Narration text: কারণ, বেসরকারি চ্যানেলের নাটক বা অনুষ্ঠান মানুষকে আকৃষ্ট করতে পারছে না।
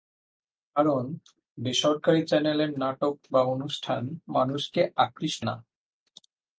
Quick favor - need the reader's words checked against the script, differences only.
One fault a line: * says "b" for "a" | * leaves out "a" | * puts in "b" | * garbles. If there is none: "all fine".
* leaves out "করতে পারছে"